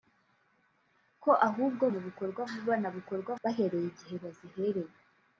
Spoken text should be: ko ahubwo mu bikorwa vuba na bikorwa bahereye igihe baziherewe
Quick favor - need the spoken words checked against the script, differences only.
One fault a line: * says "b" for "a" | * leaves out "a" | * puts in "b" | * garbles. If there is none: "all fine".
all fine